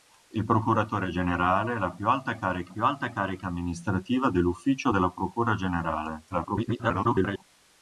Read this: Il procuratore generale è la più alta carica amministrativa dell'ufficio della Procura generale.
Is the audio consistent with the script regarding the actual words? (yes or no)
no